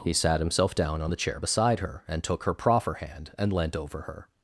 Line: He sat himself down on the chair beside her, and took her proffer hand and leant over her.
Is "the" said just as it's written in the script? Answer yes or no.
yes